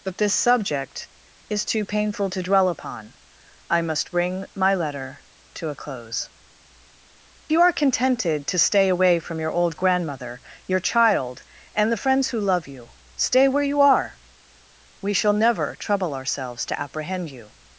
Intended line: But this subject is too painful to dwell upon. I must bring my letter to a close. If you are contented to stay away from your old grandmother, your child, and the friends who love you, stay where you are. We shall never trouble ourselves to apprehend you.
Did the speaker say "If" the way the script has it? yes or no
no